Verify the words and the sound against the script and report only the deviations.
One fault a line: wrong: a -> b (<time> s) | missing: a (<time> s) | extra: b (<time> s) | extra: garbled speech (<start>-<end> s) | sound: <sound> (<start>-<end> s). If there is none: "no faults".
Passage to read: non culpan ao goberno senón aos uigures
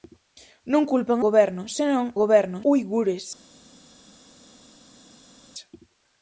missing: ao (1.2 s)
wrong: aos -> goberno (2.2 s)